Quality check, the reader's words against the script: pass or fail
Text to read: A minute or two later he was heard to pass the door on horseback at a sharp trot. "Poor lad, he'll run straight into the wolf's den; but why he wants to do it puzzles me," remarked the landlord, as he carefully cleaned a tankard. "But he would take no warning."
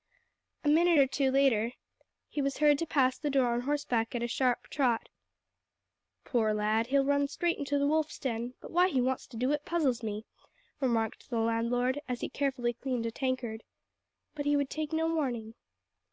pass